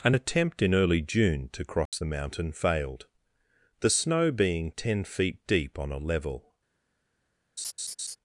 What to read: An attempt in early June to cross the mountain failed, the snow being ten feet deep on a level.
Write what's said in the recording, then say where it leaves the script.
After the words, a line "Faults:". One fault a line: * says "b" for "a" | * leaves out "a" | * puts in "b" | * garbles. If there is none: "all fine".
An attempt in early June to cross the mountain failed, the snow being ten feet deep on a level.
Faults:
all fine